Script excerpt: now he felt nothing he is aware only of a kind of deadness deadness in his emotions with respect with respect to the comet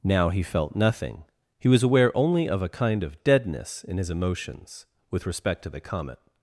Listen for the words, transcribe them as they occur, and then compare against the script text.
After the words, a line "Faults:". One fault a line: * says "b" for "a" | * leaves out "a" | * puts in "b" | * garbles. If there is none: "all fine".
now he felt nothing he was aware only of a kind of deadness in his emotions with respect to the comet
Faults:
* says "was" for "is"
* leaves out "deadness"
* leaves out "with respect"